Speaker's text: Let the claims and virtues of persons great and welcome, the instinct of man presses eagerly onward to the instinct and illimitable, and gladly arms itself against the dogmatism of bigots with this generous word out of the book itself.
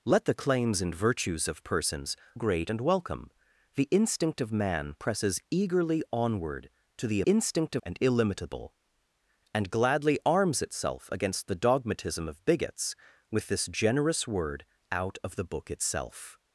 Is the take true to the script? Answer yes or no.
yes